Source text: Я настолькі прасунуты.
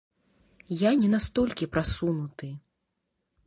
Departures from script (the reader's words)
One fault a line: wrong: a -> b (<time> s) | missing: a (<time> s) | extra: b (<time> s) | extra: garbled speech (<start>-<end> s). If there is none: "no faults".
extra: не (1.0 s)